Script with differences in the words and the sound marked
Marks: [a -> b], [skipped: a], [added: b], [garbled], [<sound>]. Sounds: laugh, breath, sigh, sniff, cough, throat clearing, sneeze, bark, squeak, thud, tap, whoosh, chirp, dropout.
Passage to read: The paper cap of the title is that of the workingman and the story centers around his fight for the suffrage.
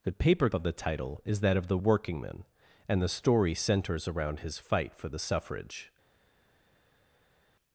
The paper [skipped: cap] of the title is that of the workingman and the story centers around his fight for the suffrage.